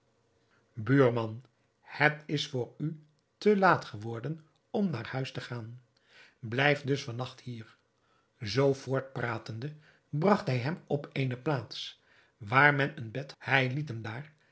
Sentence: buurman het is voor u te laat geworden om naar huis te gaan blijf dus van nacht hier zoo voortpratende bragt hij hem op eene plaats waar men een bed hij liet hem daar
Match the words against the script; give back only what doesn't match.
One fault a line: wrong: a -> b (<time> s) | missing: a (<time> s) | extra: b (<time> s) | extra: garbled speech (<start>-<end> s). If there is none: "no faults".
no faults